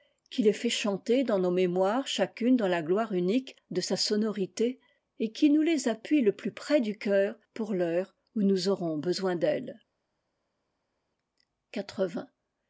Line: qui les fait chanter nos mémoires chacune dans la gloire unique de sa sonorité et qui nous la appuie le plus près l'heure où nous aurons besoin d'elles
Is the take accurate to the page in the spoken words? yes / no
no